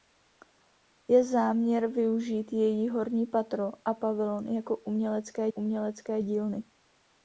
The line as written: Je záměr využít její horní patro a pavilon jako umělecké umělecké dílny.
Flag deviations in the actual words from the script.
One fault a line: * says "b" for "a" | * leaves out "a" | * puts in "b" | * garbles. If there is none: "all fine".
all fine